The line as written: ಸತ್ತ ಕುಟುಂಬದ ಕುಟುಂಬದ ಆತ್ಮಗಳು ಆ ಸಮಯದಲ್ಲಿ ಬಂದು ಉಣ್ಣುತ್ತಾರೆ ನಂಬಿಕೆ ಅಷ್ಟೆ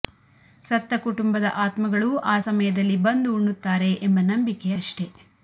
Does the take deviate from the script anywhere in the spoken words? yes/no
yes